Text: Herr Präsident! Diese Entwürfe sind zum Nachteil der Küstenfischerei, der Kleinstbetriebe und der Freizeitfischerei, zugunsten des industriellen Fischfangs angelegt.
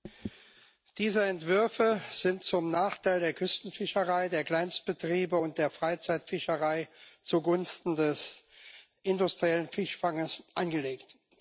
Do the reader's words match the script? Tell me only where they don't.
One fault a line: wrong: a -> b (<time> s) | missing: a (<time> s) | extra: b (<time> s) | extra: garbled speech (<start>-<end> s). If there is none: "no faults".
no faults